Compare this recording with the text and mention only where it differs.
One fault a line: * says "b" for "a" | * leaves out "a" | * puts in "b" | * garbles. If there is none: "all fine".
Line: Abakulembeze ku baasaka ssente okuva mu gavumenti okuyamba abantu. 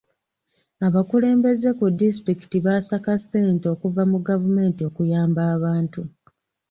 * puts in "disitulikiti"